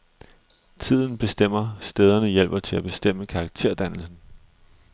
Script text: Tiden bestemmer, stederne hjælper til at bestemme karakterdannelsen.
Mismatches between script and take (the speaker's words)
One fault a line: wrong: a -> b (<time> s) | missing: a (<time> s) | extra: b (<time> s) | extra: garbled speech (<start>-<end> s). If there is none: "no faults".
no faults